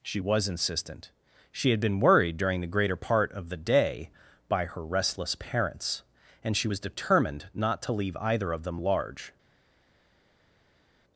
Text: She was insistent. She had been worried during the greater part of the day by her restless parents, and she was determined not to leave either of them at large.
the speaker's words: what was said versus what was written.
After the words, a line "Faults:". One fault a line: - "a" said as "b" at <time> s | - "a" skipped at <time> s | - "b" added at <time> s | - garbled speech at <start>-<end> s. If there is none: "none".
She was insistent. She had been worried during the greater part of the day by her restless parents, and she was determined not to leave either of them large.
Faults:
- "at" skipped at 8.8 s